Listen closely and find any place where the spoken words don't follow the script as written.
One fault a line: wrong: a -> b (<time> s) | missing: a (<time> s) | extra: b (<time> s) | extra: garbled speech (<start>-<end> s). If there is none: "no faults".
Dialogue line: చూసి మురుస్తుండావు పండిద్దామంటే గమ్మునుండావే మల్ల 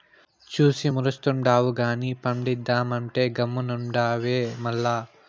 extra: గానీ (1.8 s)